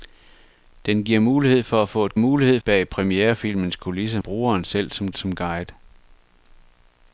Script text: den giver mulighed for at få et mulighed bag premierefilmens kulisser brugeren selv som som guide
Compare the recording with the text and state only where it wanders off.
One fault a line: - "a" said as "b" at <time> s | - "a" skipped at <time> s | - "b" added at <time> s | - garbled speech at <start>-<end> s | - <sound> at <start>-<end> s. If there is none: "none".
none